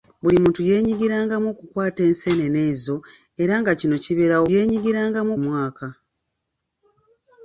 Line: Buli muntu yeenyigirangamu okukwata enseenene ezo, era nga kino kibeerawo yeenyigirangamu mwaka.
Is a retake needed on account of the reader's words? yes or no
no